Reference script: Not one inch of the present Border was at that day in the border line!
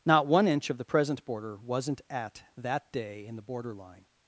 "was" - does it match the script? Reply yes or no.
no